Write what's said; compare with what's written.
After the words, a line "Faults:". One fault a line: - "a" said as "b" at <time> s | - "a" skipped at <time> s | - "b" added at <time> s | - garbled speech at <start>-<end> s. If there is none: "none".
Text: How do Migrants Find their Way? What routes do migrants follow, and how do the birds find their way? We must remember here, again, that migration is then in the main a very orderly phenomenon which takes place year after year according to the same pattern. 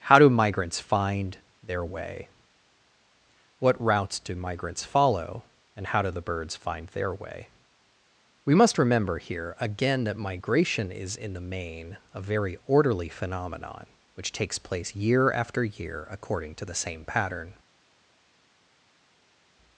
How do Migrants Find their Way? What routes do migrants follow, and how do the birds find their way? We must remember here, again, that migration is in the main a very orderly phenomenon which takes place year after year according to the same pattern.
Faults:
- "then" skipped at 11.2 s